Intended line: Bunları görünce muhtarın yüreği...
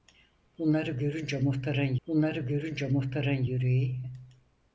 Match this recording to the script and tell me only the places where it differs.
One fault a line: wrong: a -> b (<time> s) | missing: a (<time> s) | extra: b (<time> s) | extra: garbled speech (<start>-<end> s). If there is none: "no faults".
extra: bunları görünce muhtarın (2.1 s)